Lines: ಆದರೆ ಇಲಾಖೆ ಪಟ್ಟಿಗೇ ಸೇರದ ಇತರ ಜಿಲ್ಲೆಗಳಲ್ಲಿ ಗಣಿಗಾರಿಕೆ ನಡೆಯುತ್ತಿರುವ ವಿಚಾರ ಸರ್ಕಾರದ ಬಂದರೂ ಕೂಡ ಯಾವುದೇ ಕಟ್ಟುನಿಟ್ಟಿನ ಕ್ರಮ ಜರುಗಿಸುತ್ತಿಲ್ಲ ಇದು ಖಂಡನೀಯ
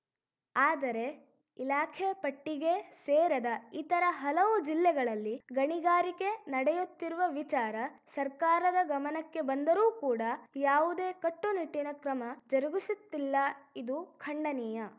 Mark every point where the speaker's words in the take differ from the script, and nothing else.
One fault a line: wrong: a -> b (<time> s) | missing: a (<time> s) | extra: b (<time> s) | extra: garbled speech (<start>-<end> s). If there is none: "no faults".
extra: ಹಲವು (4.2 s)
extra: ಗಮನಕ್ಕೆ (8.9 s)